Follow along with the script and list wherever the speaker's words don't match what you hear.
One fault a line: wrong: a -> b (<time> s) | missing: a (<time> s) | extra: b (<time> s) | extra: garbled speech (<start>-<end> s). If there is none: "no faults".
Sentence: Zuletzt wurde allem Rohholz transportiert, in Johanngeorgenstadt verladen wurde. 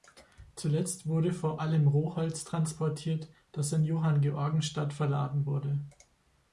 extra: vor (1.3 s)
extra: das (3.5 s)